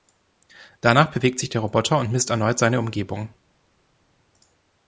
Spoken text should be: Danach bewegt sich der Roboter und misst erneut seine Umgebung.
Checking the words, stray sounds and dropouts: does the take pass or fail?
pass